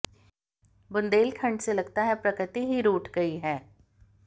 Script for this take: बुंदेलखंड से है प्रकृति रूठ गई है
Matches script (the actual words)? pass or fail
fail